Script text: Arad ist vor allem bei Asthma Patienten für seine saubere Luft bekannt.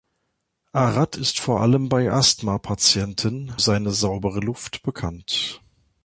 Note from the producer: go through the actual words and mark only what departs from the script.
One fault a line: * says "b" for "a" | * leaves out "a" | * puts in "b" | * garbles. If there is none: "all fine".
* leaves out "für"